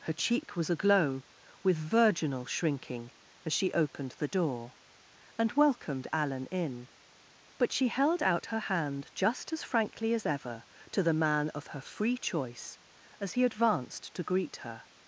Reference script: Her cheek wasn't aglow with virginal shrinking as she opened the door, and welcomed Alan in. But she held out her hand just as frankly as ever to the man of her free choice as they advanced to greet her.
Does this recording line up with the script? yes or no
no